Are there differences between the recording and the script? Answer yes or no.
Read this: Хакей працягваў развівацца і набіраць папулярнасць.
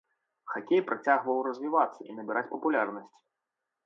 no